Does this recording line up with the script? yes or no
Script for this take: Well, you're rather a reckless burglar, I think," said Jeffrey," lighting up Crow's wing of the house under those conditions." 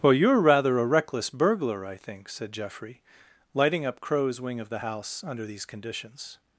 no